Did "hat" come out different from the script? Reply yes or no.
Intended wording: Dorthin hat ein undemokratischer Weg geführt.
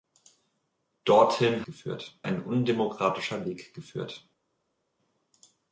yes